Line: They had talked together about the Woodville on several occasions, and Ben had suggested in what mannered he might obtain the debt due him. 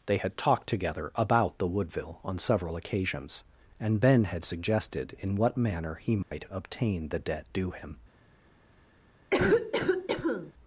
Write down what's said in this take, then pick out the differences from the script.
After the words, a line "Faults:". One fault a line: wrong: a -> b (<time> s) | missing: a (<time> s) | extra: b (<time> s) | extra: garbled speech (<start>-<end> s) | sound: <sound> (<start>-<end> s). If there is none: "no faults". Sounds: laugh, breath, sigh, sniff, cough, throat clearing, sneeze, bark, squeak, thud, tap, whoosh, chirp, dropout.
They had talked together about the Woodville on several occasions, and Ben had suggested in what manner he might obtain the debt due him.
Faults:
wrong: mannered -> manner (5.6 s)
sound: dropout (6.2-6.3 s)
sound: cough (9.3-10.5 s)